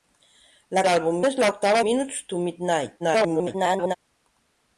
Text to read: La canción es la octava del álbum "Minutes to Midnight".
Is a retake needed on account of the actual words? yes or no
yes